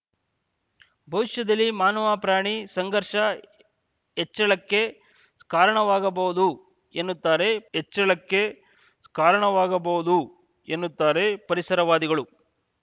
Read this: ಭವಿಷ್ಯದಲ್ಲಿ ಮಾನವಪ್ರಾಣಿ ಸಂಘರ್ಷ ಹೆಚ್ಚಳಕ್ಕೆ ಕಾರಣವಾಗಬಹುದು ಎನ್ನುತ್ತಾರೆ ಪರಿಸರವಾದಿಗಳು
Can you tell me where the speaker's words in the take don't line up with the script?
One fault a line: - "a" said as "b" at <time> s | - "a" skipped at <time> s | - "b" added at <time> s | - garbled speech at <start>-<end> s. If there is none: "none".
- "ಹೆಚ್ಚಳಕ್ಕೆ ಕಾರಣವಾಗಬಹುದು ಎನ್ನುತ್ತಾರೆ" added at 7.7 s